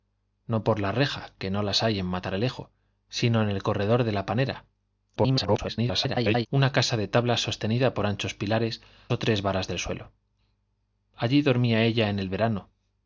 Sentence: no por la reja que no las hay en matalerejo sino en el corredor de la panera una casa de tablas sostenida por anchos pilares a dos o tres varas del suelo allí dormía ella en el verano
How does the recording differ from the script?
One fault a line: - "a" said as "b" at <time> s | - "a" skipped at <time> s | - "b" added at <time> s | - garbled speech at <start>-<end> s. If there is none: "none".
- garbled speech at 5.2-6.5 s
- "a dos" skipped at 8.8 s